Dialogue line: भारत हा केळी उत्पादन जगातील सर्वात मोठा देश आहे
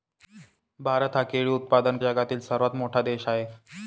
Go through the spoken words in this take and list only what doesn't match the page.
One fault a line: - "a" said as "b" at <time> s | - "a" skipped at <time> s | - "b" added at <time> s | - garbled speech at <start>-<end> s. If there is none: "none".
none